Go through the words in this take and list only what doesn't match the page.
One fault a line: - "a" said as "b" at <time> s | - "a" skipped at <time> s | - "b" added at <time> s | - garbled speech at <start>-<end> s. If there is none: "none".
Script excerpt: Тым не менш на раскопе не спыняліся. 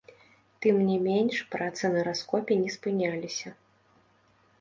- "працы" added at 1.6 s